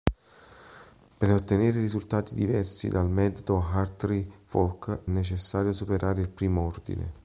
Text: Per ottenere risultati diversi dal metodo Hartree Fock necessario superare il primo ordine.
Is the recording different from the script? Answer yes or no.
no